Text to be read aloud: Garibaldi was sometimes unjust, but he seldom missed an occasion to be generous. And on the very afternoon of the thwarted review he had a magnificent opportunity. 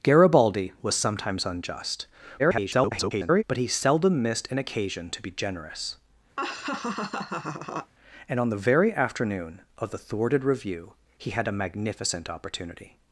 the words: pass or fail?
fail